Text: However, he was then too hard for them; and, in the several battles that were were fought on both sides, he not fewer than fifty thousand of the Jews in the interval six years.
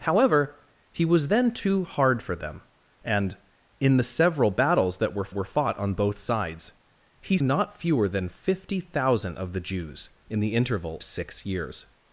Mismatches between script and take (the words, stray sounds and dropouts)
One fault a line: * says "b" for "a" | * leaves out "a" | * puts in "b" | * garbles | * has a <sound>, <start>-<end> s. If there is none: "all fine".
all fine